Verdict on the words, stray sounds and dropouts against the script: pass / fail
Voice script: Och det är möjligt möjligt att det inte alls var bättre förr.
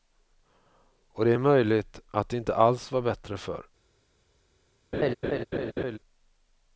fail